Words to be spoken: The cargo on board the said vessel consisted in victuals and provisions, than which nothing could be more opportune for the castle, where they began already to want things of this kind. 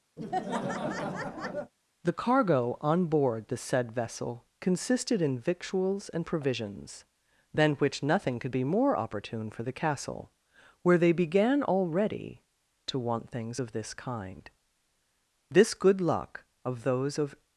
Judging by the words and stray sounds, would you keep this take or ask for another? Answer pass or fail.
fail